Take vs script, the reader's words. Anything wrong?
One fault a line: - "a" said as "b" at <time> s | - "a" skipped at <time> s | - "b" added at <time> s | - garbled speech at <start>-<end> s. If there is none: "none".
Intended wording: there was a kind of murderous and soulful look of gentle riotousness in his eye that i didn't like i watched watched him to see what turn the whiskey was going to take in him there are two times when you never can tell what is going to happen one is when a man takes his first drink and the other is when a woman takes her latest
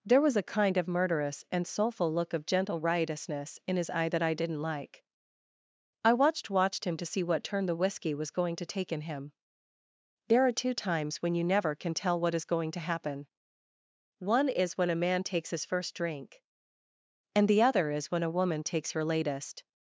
none